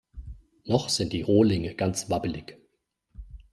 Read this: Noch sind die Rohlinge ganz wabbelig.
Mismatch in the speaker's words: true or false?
false